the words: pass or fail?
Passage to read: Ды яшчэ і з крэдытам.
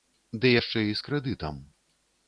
pass